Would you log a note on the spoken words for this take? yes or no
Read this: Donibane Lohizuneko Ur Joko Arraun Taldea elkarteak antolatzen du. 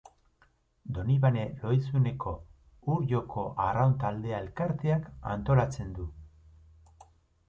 no